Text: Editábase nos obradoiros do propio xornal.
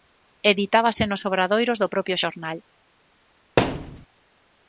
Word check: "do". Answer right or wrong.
right